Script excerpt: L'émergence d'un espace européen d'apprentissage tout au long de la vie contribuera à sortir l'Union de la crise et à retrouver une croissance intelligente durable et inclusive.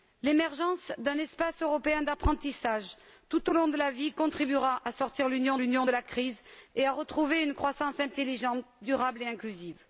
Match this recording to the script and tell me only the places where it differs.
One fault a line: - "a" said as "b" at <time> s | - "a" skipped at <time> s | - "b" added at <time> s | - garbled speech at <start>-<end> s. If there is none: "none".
- "l'Union" added at 5.6 s